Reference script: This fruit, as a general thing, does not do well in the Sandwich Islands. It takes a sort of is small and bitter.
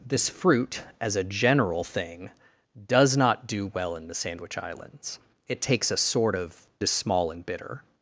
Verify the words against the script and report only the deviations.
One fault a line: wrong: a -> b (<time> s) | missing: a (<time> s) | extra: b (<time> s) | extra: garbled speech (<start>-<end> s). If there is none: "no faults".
no faults